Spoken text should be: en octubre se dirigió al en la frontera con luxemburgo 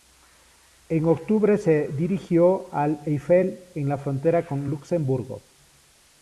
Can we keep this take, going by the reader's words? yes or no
no